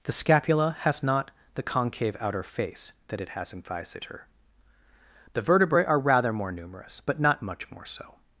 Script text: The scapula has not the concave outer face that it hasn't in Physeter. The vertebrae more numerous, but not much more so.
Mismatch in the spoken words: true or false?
true